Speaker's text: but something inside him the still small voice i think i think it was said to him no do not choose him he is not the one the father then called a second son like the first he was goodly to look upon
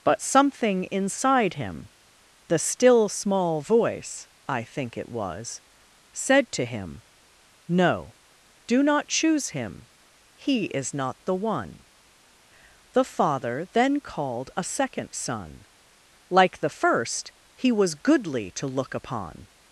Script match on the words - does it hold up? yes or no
no